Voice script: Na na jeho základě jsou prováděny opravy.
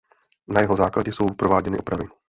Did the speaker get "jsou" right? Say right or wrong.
right